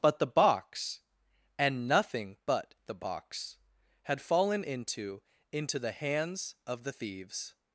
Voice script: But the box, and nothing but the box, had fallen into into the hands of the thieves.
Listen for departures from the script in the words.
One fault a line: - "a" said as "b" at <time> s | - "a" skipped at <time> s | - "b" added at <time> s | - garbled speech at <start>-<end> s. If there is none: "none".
none